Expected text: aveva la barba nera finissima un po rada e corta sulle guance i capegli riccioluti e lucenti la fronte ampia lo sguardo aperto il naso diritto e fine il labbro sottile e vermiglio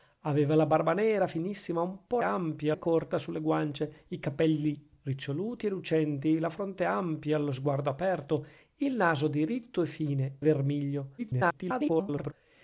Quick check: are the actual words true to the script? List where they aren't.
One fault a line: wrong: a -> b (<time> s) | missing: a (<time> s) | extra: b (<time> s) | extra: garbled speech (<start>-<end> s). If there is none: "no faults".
wrong: rada -> ampia (2.2 s)
missing: il labbro sottile (10.4 s)
extra: garbled speech (11.2-12.3 s)